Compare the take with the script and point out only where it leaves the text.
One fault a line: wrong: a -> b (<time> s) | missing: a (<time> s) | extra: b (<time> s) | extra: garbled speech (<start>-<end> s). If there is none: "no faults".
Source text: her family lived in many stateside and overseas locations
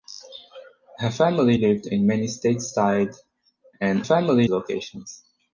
wrong: overseas -> family (4.0 s)